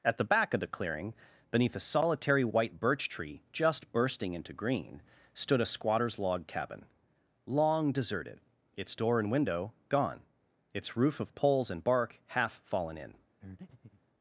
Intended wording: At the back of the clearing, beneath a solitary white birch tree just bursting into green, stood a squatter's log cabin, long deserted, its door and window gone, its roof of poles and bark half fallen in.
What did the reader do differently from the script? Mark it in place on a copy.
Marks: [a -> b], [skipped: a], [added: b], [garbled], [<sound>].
At the back of the clearing, beneath a solitary white birch tree just bursting into green, stood a squatter's log cabin, long deserted, its door and window gone, its roof of poles and bark half fallen in. [breath]